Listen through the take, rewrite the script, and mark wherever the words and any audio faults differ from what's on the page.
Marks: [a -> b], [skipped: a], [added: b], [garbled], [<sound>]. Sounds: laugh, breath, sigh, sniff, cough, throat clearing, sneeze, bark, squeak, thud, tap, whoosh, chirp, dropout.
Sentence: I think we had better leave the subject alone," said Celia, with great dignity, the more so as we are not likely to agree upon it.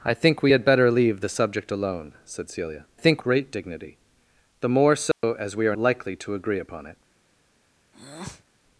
I think we had better leave the subject alone," said Celia, [with -> think] great dignity, the more so [dropout] as we are [skipped: not] likely to agree upon it. [breath]